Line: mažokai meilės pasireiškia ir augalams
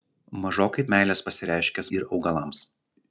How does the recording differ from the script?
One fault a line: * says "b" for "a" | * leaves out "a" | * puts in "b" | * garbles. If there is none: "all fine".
all fine